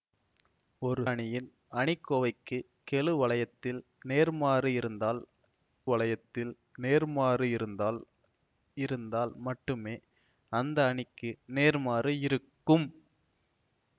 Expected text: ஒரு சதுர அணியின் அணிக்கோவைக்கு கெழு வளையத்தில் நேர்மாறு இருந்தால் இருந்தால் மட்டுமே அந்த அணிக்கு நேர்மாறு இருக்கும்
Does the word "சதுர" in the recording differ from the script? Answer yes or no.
yes